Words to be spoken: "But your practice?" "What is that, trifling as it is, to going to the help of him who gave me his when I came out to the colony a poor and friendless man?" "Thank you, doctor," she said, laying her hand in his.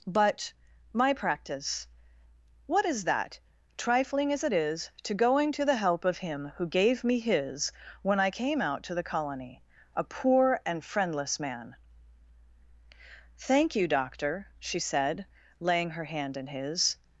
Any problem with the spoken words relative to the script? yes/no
yes